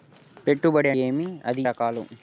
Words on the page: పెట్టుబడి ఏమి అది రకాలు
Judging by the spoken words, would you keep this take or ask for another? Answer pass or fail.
pass